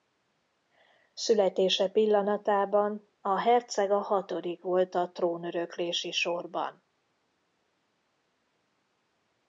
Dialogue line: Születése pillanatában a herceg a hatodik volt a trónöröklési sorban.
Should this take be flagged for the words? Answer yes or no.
no